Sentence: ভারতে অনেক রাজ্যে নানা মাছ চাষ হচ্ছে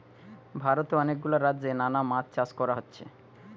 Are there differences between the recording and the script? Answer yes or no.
yes